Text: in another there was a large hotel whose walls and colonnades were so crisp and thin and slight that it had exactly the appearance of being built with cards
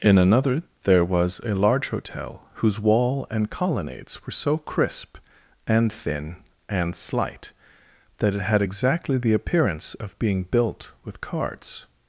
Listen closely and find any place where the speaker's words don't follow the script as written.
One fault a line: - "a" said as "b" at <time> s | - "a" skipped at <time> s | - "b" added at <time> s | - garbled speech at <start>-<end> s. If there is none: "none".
- "walls" said as "wall" at 2.8 s